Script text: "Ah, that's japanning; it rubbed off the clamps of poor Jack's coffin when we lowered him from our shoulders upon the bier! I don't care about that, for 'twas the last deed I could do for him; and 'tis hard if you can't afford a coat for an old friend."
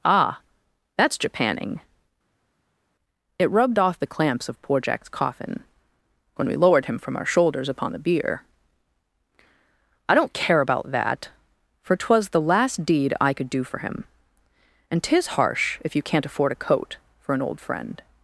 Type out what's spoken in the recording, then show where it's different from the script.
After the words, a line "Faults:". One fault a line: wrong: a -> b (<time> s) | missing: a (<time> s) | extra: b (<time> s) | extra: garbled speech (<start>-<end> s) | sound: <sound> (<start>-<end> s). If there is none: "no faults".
"Ah, that's japanning; it rubbed off the clamps of poor Jack's coffin when we lowered him from our shoulders upon the bier! I don't care about that, for 'twas the last deed I could do for him; and 'tis harsh if you can't afford a coat for an old friend."
Faults:
wrong: hard -> harsh (15.4 s)